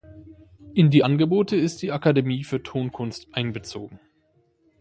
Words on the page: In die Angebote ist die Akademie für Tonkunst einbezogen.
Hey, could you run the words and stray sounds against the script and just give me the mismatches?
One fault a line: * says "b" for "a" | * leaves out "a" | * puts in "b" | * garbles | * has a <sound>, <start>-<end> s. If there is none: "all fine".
all fine